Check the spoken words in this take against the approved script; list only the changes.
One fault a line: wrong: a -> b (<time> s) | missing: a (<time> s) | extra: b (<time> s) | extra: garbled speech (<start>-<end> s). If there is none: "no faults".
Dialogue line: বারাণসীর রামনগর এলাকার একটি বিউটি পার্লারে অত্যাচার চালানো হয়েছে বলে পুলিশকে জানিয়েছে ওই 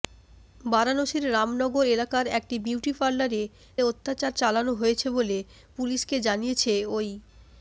no faults